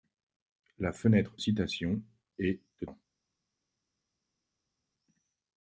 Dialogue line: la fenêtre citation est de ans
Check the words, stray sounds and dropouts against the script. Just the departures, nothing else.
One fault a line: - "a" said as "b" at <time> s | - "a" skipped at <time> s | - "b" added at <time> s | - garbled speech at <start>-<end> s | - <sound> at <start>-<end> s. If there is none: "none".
none